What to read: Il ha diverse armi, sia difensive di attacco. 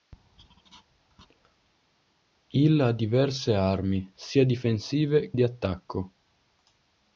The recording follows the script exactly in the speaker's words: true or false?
true